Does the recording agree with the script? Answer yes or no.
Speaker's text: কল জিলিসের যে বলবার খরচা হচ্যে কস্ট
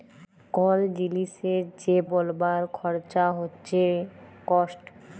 yes